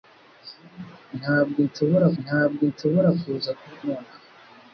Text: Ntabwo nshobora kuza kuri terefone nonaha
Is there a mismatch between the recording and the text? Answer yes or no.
yes